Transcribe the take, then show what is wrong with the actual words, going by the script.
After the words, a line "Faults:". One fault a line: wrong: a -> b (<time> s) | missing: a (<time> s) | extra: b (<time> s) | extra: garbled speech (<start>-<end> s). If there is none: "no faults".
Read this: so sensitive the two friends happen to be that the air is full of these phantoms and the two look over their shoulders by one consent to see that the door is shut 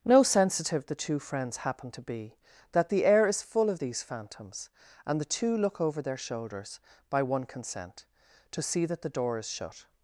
no sensitive the two friends happen to be that the air is full of these phantoms and the two look over their shoulders by one consent to see that the door is shut
Faults:
wrong: so -> no (0.0 s)